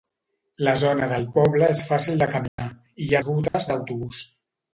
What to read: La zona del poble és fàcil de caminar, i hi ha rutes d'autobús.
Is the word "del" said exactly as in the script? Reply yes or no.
yes